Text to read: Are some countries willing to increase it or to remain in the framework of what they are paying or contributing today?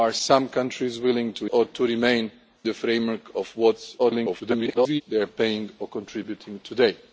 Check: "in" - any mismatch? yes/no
yes